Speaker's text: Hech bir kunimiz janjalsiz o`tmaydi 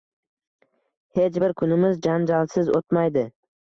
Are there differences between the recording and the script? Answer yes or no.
no